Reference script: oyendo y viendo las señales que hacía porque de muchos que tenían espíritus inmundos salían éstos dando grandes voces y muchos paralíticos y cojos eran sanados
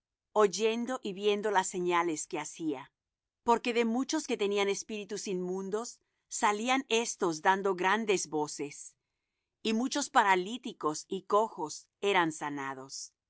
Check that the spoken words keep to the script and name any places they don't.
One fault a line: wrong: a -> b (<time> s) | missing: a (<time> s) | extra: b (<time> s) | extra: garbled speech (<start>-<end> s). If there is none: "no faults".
no faults